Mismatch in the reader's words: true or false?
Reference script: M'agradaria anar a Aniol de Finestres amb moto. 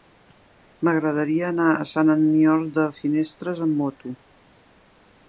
true